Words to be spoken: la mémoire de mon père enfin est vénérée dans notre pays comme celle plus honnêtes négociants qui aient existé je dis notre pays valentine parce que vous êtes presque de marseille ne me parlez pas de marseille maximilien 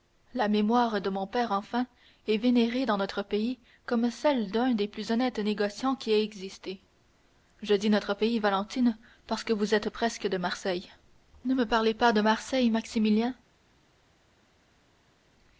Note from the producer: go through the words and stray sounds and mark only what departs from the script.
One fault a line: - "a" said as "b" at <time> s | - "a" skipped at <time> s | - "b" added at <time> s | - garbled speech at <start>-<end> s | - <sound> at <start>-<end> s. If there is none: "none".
- "d'un des" added at 4.5 s